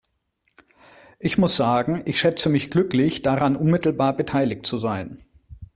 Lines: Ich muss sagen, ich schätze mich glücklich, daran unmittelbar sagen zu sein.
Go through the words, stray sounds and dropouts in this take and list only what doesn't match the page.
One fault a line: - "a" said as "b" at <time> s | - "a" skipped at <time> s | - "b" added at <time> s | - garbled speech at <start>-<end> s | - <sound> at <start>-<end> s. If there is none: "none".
- "sagen" said as "beteiligt" at 4.1 s